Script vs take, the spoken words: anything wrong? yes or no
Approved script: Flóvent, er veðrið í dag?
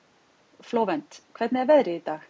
yes